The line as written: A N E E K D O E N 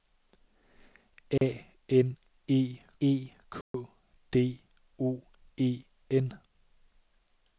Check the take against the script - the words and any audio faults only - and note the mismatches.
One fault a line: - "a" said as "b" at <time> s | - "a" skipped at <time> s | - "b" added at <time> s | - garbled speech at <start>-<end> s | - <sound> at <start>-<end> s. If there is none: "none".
- dropout at 1.4-1.4 s
- dropout at 3.6-3.7 s